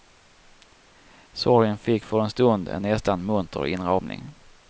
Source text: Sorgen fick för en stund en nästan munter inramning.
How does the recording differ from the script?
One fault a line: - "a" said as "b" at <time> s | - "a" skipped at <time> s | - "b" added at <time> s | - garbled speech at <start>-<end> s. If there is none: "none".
none